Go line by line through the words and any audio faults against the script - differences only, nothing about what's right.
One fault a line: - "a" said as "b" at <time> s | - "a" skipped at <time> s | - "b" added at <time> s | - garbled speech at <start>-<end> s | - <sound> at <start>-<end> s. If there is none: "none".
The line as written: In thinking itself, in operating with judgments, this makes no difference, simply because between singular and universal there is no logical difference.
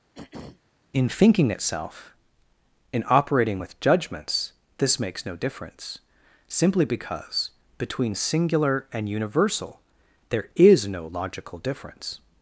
- throat clearing at 0.1-0.6 s